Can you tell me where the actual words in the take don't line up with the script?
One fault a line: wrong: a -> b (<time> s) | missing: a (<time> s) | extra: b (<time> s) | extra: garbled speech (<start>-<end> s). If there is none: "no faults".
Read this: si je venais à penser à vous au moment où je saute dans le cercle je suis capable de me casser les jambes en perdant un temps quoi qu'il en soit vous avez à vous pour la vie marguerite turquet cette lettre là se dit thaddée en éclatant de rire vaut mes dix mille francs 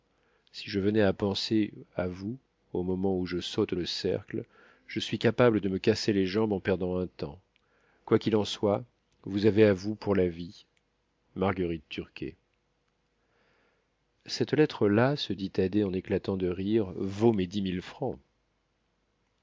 missing: dans (3.8 s)